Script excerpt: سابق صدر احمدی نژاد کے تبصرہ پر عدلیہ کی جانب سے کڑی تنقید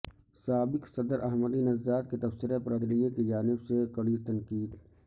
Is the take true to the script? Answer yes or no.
yes